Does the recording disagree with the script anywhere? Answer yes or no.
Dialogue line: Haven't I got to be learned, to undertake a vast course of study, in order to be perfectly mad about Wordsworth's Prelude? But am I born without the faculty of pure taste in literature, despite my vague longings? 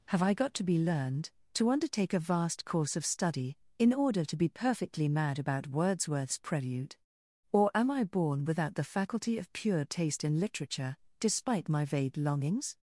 yes